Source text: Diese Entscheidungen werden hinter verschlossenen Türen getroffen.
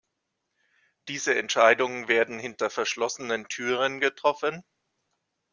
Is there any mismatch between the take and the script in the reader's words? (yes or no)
no